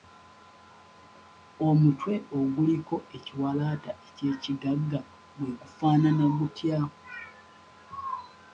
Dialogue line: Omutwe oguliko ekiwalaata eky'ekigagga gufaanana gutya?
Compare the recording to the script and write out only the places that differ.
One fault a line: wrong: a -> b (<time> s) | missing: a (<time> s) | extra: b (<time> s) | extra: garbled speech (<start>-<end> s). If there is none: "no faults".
extra: gwe (5.4 s)